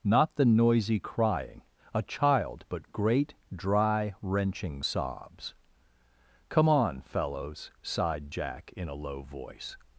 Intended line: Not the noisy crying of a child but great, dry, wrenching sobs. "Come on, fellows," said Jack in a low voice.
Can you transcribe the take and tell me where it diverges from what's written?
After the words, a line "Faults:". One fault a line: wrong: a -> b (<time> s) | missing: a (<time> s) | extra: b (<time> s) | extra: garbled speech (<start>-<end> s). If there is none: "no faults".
Not the noisy crying a child but great, dry, wrenching sobs. "Come on, fellows," sighed Jack in a low voice.
Faults:
missing: of (1.6 s)
wrong: said -> sighed (7.8 s)